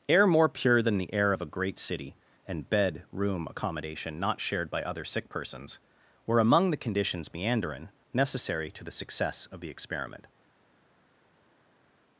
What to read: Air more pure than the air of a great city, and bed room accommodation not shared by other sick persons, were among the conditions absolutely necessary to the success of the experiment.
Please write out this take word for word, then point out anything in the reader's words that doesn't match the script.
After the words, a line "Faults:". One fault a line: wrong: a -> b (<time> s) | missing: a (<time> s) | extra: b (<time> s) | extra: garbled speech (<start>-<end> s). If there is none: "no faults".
Air more pure than the air of a great city, and bed room accommodation not shared by other sick persons, were among the conditions meanderin necessary to the success of the experiment.
Faults:
wrong: absolutely -> meanderin (7.3 s)